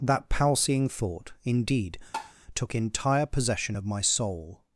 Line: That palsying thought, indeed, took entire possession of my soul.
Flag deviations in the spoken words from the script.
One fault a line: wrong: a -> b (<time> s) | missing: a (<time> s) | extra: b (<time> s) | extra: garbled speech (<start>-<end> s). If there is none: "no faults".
no faults